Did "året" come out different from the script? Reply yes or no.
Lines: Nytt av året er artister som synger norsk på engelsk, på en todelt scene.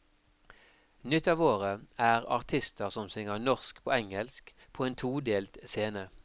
no